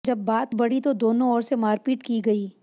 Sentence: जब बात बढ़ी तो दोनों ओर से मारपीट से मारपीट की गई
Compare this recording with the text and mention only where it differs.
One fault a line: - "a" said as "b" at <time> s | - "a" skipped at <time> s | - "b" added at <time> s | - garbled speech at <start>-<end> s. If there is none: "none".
- "से मारपीट" skipped at 2.0 s